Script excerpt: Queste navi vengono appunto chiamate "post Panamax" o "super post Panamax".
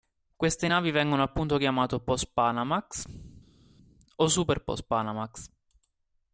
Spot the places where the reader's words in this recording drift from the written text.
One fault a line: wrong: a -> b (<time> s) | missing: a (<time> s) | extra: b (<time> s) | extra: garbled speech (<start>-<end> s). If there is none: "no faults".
no faults